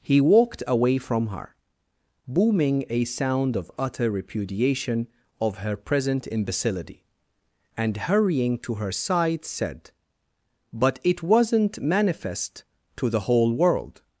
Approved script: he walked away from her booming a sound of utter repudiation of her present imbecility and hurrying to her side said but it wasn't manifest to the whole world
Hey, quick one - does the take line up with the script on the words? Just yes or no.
yes